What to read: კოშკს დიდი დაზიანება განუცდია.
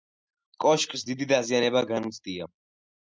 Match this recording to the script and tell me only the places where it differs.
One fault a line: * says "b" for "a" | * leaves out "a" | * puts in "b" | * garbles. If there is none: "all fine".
all fine